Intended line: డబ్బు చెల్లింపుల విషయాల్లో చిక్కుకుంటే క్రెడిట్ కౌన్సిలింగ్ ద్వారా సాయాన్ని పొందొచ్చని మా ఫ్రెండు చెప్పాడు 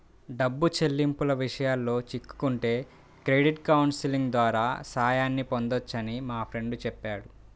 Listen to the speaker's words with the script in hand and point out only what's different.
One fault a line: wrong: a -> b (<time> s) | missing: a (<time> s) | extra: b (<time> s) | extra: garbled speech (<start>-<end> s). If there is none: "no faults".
no faults